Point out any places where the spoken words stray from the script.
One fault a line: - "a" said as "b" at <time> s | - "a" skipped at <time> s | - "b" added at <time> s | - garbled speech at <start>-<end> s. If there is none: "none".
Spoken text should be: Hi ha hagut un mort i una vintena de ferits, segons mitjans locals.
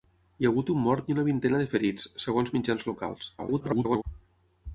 - garbled speech at 3.4-4.0 s